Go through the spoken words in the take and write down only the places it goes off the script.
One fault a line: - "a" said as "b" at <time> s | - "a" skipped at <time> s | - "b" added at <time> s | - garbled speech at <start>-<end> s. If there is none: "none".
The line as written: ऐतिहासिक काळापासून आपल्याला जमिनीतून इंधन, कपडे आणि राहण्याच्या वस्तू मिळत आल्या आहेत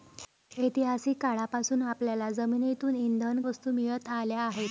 - "कपडे आणि राहण्याच्या" skipped at 3.4 s